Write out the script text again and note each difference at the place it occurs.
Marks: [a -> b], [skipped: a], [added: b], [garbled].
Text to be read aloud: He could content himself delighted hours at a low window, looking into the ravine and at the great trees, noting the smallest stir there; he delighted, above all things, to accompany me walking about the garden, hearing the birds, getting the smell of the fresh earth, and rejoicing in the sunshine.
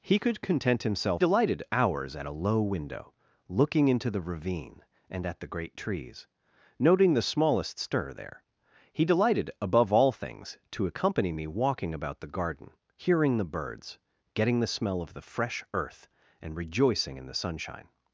He could content himself delighted hours at a low window, looking into the ravine and at the great trees, noting the smallest stir there; he delighted, above all things, to accompany me walking about the garden, hearing the birds, getting the smell of the fresh earth, and rejoicing in the sunshine.